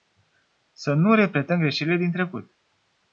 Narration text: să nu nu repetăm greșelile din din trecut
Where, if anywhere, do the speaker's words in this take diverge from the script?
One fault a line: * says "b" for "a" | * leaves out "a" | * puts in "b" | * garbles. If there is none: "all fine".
* leaves out "nu"
* leaves out "din"